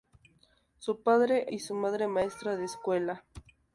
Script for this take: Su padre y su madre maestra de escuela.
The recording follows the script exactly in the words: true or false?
true